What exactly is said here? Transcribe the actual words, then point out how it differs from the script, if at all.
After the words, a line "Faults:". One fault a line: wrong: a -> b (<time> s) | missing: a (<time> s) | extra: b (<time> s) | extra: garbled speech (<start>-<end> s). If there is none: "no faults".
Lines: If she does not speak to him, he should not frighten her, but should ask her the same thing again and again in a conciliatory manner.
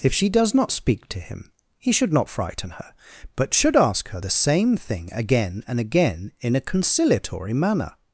If she does not speak to him, he should not frighten her, but should ask her the same thing again and again in a conciliatory manner.
Faults:
no faults